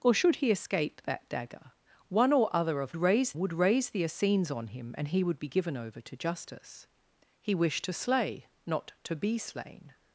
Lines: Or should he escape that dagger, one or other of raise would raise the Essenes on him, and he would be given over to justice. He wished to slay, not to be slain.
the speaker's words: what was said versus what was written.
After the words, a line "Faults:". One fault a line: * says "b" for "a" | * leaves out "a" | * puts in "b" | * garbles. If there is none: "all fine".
Or should he escape that dagger, one or other of raise would raise the Essenes on him, and he would be given over to justice. He wished to slay, not to be slain.
Faults:
all fine